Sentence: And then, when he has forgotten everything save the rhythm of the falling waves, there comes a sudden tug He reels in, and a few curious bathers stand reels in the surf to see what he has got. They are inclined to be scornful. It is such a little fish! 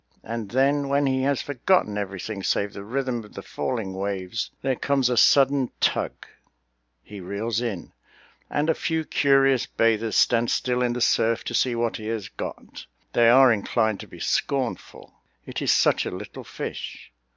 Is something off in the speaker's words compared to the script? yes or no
yes